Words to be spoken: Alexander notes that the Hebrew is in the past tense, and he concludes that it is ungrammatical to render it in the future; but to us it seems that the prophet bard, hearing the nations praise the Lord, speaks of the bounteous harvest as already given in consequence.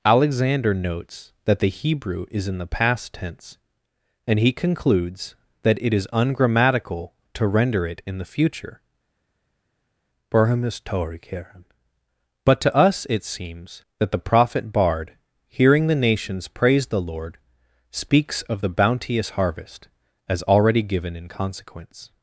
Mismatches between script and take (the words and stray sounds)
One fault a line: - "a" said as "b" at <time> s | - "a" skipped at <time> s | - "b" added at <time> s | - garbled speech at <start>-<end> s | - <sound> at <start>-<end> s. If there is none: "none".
none